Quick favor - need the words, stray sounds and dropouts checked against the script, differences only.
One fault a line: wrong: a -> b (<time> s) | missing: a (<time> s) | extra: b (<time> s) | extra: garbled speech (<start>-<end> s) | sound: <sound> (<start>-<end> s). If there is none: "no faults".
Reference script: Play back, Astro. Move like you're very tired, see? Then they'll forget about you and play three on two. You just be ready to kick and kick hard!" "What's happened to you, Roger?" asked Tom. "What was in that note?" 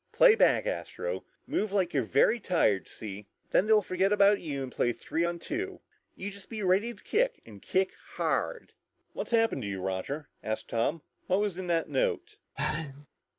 sound: sneeze (12.6-13.1 s)